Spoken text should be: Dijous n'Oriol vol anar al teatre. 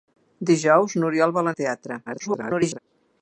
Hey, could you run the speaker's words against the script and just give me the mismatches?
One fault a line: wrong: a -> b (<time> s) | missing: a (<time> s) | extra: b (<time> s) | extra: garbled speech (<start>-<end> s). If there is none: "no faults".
missing: anar (1.5 s)
extra: garbled speech (2.1-2.8 s)